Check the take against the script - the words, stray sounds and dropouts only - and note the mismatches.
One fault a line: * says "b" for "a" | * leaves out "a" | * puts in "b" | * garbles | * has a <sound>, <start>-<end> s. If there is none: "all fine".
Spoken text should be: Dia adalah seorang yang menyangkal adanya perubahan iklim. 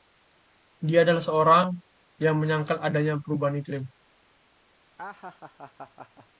* has a laugh, 5.0-6.3 s